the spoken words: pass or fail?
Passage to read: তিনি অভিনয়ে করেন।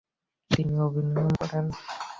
pass